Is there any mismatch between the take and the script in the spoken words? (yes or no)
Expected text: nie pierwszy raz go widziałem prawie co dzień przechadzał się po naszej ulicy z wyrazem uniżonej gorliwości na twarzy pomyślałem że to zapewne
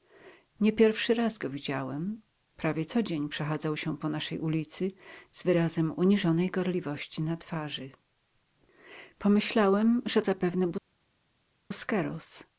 yes